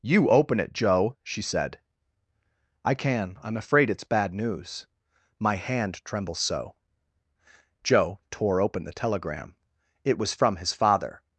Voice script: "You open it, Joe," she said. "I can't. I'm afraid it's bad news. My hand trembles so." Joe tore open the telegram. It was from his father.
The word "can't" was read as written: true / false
false